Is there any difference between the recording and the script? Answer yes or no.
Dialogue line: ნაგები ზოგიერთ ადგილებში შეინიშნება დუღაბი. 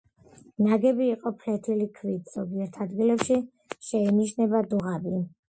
yes